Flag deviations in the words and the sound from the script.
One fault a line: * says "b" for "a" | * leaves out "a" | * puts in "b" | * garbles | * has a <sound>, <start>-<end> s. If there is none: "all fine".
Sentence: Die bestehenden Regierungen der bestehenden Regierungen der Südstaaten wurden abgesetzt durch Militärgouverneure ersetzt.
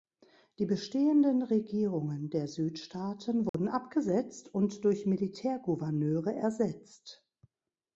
* leaves out "bestehenden Regierungen der"
* has a dropout, 3.5-3.5 s
* puts in "und"